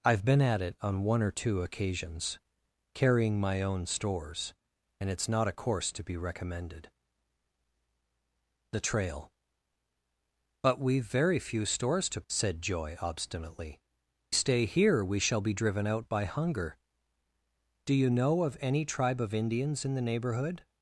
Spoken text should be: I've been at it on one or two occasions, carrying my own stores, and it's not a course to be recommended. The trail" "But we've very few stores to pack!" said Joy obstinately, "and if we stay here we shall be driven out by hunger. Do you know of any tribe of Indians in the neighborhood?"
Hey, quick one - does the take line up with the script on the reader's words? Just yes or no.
no